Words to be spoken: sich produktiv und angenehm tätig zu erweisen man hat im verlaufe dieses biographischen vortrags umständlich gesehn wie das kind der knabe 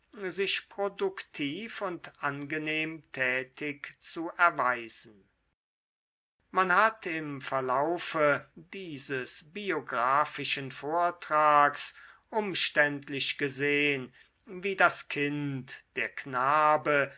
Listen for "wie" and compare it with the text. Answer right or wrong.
right